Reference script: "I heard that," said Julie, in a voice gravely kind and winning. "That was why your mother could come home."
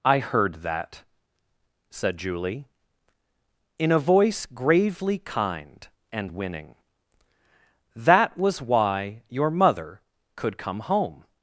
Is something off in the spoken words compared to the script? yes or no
no